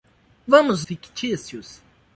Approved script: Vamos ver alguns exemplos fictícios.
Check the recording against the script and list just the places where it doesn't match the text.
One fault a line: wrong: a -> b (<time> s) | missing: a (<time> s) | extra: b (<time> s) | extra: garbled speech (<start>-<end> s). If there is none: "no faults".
missing: ver alguns exemplos (0.9 s)